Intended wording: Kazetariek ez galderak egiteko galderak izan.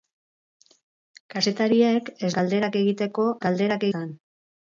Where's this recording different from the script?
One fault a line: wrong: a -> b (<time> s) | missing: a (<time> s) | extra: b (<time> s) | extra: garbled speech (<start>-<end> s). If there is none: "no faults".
no faults